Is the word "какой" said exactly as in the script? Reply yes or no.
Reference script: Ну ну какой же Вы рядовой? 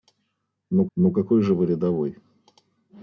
yes